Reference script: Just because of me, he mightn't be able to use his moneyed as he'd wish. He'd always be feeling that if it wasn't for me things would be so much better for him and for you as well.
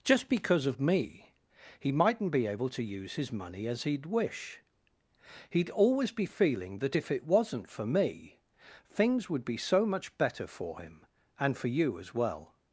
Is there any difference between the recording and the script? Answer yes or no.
yes